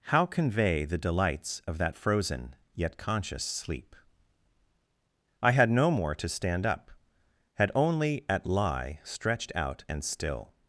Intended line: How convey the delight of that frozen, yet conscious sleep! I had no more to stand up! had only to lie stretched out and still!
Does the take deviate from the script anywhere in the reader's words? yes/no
yes